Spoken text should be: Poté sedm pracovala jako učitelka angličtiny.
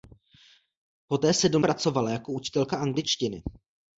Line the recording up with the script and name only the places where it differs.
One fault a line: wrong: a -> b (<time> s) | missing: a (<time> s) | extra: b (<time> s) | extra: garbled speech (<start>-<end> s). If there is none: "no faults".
no faults